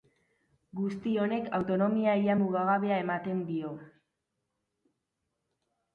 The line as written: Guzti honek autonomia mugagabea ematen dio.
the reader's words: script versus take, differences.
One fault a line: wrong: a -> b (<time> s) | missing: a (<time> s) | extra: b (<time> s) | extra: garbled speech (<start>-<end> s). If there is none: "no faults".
extra: ia (2.2 s)